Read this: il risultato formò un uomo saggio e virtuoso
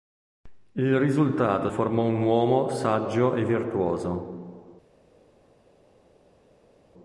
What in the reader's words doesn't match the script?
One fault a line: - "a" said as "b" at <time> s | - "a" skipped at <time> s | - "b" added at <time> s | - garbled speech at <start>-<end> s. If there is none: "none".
none